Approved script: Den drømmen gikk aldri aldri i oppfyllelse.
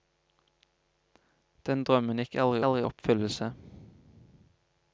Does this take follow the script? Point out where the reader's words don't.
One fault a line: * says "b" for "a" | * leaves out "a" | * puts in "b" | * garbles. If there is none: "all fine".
all fine